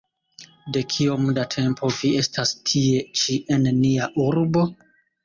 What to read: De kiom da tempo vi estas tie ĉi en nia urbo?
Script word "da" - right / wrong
right